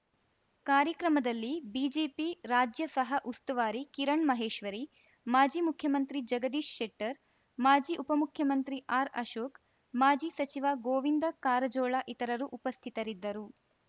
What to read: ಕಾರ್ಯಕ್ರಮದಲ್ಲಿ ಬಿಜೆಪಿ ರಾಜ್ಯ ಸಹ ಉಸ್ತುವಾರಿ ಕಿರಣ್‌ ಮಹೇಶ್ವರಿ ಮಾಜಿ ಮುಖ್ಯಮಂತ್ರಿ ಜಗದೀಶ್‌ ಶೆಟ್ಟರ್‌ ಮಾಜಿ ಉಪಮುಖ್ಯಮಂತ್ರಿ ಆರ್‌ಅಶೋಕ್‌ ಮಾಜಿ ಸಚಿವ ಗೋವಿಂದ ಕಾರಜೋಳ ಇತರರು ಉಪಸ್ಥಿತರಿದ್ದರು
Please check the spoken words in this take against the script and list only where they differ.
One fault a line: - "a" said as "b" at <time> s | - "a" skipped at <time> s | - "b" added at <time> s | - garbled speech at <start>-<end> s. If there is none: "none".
none